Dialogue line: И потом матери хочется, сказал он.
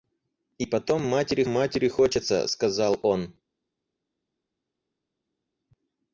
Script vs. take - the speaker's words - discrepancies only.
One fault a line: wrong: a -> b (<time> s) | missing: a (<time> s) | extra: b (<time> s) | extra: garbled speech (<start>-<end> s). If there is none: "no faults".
extra: матери (1.5 s)